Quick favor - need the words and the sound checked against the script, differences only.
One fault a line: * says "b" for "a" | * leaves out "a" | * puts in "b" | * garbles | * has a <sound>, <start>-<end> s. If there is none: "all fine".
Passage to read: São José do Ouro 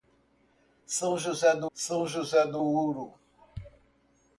* puts in "são José do"